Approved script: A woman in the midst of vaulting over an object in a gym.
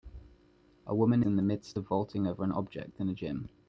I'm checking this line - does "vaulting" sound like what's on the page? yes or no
yes